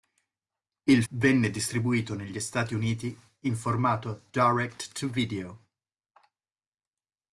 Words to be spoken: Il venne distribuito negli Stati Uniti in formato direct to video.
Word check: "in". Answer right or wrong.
right